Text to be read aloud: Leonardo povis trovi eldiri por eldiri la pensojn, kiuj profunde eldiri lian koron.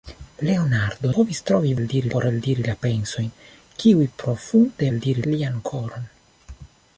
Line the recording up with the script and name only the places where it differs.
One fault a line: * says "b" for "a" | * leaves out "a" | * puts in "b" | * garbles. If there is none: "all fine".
all fine